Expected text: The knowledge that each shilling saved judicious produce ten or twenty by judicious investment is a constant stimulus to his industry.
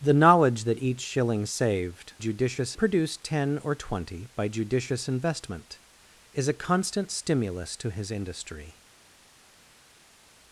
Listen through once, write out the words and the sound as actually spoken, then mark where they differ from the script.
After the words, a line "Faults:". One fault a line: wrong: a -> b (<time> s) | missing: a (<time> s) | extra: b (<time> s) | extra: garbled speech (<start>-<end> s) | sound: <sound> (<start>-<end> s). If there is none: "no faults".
The knowledge that each shilling saved judicious produce ten or twenty by judicious investment is a constant stimulus to his industry.
Faults:
no faults